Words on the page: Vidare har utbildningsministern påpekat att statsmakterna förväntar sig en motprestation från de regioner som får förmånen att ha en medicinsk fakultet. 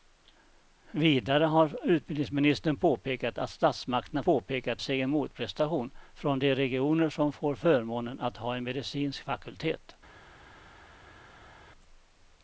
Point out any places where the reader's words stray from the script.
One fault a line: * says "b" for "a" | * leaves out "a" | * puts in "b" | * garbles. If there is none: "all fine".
* says "påpekat" for "förväntar"